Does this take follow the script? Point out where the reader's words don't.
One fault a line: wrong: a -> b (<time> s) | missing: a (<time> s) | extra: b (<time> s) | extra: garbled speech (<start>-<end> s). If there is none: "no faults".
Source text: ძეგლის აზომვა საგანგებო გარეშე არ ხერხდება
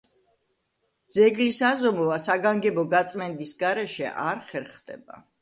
extra: გაწმენდის (3.0 s)